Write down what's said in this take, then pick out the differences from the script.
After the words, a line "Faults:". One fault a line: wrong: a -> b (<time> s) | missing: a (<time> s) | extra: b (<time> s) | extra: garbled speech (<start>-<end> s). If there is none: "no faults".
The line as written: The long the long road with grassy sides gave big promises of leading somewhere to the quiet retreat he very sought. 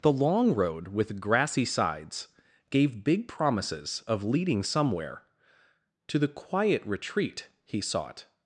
The long road with grassy sides gave big promises of leading somewhere to the quiet retreat he sought.
Faults:
missing: the long (0.6 s)
missing: very (7.8 s)